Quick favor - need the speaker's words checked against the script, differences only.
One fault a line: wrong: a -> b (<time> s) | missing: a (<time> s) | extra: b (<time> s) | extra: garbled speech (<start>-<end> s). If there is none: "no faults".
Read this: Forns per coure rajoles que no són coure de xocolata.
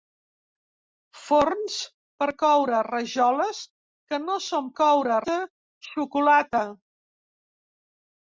no faults